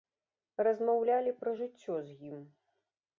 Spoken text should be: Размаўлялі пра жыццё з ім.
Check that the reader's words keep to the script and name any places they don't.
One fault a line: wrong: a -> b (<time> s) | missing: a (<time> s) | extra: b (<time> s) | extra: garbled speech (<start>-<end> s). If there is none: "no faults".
no faults